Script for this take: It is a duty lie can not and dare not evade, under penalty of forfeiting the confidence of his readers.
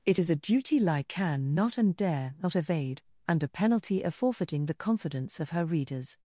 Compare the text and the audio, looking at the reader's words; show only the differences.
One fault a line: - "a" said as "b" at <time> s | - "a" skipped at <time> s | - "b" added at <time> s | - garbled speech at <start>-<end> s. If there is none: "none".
- "his" said as "her" at 5.5 s